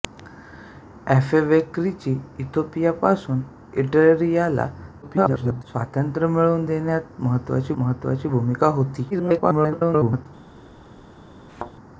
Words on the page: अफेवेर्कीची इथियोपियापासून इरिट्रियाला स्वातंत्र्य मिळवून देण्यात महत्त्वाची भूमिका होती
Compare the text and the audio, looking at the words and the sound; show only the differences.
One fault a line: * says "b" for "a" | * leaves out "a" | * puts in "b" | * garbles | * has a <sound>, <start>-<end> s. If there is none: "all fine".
* garbles
* puts in "महत्त्वाची"
* garbles
* has a thud, 11.5-11.7 s